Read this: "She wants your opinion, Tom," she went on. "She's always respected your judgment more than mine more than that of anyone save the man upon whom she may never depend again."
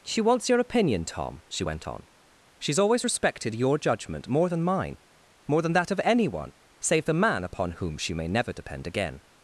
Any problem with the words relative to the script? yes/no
no